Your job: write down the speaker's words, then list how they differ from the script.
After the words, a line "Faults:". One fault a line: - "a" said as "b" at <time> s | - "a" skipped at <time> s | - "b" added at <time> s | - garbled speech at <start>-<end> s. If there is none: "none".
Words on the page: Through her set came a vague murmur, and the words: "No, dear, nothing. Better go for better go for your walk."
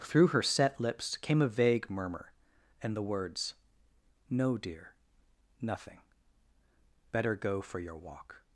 Through her set lips came a vague murmur, and the words: "No, dear, nothing. Better go for your walk."
Faults:
- "lips" added at 0.8 s
- "better go for" skipped at 7.8 s